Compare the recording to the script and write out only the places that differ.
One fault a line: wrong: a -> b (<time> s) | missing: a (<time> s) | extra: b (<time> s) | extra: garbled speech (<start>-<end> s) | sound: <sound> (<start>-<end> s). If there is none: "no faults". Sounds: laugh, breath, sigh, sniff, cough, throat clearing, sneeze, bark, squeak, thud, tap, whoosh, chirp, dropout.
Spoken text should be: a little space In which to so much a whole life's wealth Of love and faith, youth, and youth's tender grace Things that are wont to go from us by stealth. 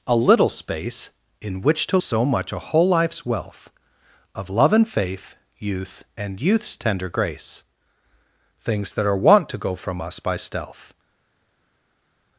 no faults